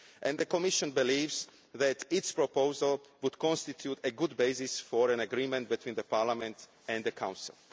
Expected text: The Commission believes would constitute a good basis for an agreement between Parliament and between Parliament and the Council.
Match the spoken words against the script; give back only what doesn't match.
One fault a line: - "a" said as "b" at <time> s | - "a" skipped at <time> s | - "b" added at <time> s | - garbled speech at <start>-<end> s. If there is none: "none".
- "that its proposal" added at 1.7 s
- "between Parliament and" skipped at 7.0 s